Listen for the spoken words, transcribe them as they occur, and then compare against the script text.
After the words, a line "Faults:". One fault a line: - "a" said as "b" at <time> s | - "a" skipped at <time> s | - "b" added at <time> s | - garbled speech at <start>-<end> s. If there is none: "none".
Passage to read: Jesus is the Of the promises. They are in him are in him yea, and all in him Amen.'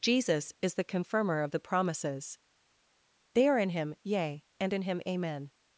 Jesus is the Confirmer of the promises. They are in him yea, and in him Amen.'
Faults:
- "Confirmer" added at 0.8 s
- "are in him" skipped at 3.9 s
- "all" skipped at 4.7 s